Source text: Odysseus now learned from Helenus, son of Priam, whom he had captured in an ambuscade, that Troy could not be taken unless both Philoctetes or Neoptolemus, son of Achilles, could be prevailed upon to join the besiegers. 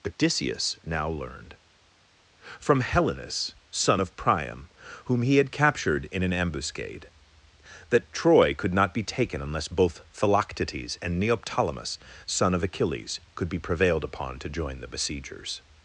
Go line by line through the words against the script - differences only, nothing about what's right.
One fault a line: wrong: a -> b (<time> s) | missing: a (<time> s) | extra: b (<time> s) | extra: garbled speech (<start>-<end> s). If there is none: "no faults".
wrong: or -> and (11.0 s)